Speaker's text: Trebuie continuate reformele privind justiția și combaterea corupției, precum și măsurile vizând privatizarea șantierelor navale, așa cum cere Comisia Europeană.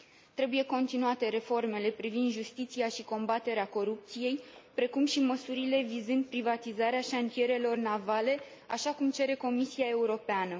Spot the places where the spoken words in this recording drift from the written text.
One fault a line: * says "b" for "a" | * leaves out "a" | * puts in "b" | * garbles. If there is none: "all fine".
all fine